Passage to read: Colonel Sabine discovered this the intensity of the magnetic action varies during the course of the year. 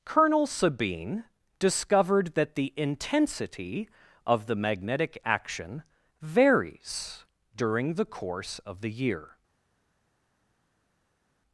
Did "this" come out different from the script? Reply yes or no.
yes